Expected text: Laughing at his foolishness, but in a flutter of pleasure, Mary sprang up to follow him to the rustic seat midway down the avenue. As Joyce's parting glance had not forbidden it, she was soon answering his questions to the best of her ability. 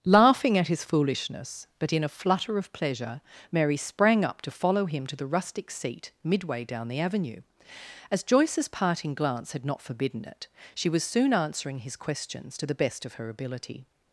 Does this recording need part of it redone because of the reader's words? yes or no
no